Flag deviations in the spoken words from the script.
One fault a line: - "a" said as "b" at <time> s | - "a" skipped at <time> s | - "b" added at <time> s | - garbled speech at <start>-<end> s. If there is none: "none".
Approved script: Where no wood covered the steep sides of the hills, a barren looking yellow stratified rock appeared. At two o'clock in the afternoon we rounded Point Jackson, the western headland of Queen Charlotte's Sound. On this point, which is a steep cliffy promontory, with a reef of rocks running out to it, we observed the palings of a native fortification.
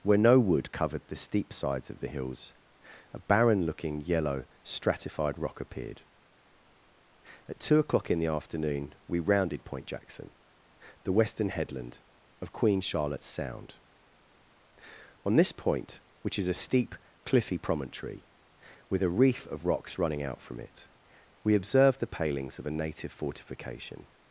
- "to" said as "from" at 20.4 s